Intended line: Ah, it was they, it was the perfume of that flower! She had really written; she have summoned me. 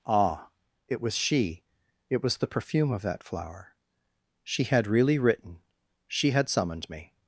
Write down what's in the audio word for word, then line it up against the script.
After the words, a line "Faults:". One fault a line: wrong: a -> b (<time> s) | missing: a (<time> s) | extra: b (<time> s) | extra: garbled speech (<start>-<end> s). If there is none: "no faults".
Ah, it was she, it was the perfume of that flower! She had really written; she had summoned me.
Faults:
wrong: they -> she (1.1 s)
wrong: have -> had (6.3 s)